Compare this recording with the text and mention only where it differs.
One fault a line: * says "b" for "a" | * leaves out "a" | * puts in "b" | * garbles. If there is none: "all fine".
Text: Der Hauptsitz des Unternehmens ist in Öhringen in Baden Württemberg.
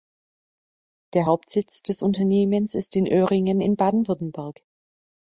all fine